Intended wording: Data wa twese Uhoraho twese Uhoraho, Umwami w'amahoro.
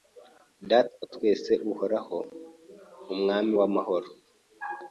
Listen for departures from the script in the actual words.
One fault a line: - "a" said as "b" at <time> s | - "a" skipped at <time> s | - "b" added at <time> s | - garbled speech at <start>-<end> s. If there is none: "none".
- "twese Uhoraho" skipped at 2.2 s